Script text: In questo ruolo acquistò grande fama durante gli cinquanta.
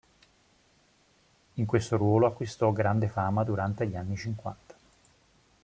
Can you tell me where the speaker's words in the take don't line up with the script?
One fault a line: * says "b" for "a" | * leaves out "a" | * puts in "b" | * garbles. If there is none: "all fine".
* puts in "anni"